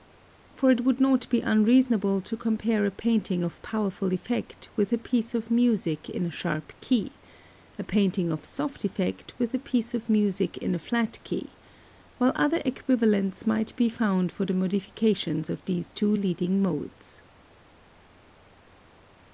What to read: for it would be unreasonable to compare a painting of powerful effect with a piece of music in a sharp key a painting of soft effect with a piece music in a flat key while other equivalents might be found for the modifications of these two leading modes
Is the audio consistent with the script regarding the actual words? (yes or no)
no